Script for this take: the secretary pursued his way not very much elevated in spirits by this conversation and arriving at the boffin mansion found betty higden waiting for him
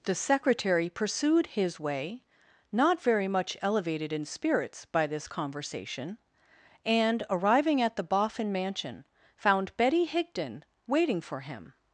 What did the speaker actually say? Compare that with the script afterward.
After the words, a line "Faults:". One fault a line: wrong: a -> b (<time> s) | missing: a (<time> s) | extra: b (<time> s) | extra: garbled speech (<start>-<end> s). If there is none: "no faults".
the secretary pursued his way not very much elevated in spirits by this conversation and arriving at the boffin mansion found betty higden waiting for him
Faults:
no faults